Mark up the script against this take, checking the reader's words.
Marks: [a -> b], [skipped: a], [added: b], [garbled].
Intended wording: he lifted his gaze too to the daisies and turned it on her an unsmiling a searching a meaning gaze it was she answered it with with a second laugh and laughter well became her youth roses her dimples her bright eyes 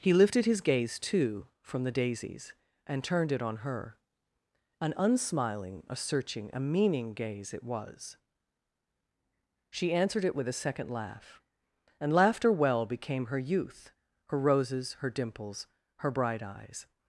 he lifted his gaze too [to -> from] the daisies and turned it on her an unsmiling a searching a meaning gaze it was she answered it with [skipped: with] a second laugh and laughter well became her youth [added: her] roses her dimples her bright eyes